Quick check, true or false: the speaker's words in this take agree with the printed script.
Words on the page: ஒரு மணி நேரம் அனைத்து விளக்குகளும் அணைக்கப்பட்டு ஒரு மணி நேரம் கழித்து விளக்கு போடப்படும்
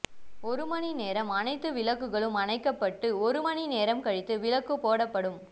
true